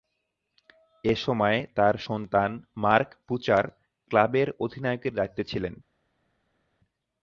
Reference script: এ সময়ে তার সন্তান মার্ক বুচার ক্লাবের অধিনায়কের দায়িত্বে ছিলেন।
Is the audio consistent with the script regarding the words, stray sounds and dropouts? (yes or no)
yes